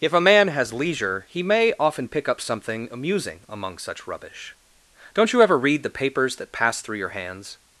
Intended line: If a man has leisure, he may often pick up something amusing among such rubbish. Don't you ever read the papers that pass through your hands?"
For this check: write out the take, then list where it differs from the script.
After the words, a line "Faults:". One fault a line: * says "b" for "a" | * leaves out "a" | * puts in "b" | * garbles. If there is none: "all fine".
If a man has leisure, he may often pick up something amusing among such rubbish. Don't you ever read the papers that pass through your hands?"
Faults:
all fine